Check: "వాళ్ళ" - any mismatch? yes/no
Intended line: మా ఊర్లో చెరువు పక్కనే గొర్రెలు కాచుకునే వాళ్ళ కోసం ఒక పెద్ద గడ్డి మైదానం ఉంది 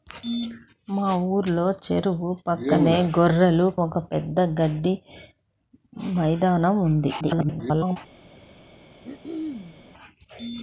yes